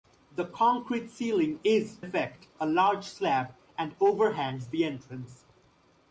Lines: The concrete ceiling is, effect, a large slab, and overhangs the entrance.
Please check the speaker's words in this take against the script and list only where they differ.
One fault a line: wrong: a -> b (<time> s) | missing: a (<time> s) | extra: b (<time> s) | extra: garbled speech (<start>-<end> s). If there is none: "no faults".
no faults